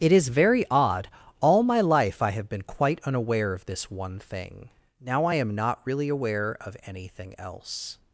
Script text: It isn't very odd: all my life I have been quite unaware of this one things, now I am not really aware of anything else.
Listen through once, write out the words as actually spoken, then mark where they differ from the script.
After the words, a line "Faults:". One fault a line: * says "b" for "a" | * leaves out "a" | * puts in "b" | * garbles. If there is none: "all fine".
It is very odd: all my life I have been quite unaware of this one thing, now I am not really aware of anything else.
Faults:
* says "is" for "isn't"
* says "thing" for "things"